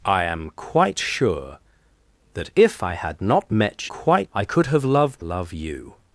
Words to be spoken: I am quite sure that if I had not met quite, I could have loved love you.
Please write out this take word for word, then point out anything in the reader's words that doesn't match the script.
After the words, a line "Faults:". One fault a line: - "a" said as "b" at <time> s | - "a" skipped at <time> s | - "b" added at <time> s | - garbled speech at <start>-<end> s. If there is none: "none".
I am quite sure that if I had not met quite, I could have loved love you.
Faults:
none